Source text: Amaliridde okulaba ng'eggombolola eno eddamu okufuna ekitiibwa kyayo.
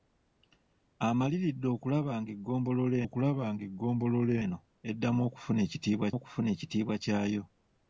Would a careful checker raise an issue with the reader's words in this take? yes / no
yes